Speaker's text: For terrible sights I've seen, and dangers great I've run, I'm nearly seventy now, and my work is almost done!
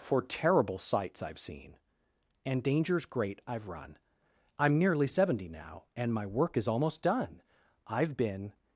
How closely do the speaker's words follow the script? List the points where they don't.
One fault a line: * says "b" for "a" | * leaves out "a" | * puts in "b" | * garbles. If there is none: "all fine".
* puts in "I've been"